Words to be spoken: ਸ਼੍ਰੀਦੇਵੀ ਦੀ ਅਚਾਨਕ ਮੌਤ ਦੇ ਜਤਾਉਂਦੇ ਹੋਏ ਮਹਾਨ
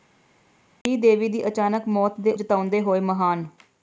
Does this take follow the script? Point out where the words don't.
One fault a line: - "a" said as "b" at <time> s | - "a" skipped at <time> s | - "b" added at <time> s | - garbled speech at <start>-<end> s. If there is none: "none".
none